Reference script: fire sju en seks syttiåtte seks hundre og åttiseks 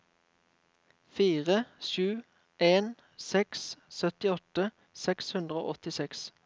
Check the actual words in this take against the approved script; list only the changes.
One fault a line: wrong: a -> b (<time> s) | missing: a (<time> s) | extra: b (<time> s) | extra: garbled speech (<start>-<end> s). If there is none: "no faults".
no faults